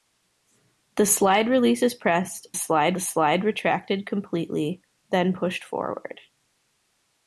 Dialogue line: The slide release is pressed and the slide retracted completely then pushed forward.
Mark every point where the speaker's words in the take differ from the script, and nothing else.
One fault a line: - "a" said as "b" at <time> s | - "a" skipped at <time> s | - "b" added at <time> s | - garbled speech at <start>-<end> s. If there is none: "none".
- "and" said as "slide" at 2.5 s